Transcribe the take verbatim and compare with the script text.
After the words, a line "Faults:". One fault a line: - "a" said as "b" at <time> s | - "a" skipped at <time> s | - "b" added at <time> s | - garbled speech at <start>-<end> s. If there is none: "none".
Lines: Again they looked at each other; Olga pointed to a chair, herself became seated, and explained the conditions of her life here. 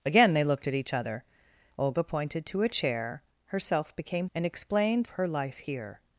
Again they looked at each other; Olga pointed to a chair, herself became and explained her life here.
Faults:
- "seated" skipped at 4.3 s
- "the conditions of" skipped at 5.1 s